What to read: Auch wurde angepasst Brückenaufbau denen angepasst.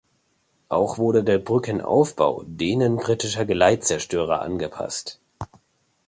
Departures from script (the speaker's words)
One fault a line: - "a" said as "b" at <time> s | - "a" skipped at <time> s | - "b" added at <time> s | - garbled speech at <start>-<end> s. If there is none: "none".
- "angepasst" said as "der" at 1.2 s
- "britischer Geleitzerstörer" added at 3.0 s